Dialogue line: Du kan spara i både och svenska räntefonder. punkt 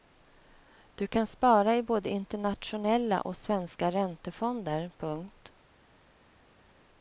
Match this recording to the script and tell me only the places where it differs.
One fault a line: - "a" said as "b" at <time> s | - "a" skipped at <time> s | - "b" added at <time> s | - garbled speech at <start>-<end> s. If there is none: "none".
- "internationella" added at 2.1 s